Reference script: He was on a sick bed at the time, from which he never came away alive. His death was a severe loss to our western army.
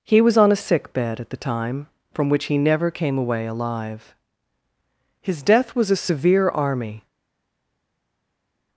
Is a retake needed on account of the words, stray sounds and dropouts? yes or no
yes